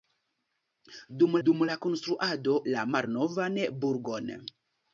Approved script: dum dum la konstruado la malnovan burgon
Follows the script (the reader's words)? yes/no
yes